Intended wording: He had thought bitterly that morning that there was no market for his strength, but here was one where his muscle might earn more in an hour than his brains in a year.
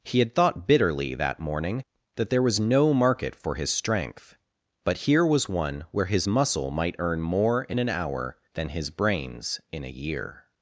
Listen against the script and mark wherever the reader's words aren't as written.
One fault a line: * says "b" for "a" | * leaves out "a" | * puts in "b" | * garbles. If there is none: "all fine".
all fine